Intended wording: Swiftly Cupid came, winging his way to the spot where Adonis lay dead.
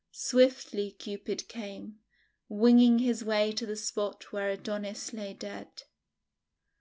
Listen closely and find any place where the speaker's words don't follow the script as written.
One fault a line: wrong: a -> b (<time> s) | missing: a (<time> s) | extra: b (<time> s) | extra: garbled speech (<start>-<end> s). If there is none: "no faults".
no faults